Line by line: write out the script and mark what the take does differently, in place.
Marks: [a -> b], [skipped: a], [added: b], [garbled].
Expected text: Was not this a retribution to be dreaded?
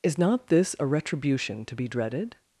[Was -> Is] not this a retribution to be dreaded?